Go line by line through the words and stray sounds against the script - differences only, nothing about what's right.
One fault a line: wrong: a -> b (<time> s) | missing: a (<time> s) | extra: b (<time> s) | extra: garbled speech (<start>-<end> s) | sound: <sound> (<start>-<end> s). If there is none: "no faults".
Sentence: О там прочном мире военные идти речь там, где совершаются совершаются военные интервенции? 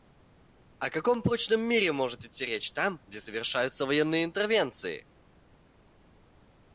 wrong: там -> каком (0.9 s)
wrong: военные -> может (1.9 s)
missing: совершаются (3.9 s)